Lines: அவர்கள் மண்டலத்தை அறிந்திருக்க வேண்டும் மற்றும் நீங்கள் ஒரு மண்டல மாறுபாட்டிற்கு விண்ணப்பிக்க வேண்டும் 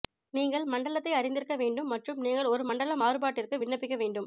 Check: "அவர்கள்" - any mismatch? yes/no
yes